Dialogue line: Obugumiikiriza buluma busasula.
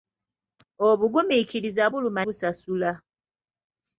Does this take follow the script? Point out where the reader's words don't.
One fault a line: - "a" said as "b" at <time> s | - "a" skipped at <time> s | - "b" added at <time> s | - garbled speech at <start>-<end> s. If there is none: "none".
none